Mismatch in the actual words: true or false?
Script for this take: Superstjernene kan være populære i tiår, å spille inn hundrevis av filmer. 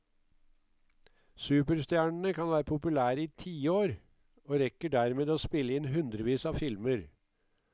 true